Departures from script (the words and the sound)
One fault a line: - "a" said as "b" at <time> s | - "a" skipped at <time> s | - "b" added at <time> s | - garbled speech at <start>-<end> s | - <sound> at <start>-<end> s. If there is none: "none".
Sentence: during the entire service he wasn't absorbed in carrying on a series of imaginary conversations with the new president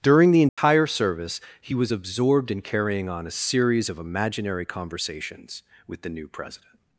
- dropout at 0.5-0.6 s
- "wasn't" said as "was" at 1.8 s